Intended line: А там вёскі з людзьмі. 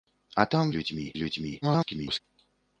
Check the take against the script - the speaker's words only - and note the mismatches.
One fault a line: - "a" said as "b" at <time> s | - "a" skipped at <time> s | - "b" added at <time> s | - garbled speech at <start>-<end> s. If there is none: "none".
- "вёскі" said as "людзьмі" at 0.8 s
- garbled speech at 1.6-2.2 s